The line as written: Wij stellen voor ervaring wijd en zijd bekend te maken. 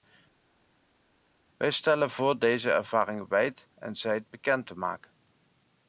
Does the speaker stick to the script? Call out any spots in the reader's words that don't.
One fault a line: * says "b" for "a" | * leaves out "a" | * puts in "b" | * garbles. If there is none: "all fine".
* puts in "deze"